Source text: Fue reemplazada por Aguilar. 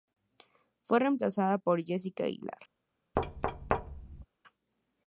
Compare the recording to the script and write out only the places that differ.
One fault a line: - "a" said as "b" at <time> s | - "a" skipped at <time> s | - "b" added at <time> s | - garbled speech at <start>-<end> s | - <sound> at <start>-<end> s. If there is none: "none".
- "Jessica" added at 1.8 s
- thud at 3.2-4.3 s